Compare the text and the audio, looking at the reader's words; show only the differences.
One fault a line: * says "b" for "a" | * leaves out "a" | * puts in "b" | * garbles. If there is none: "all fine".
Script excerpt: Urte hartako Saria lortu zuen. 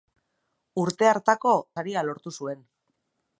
all fine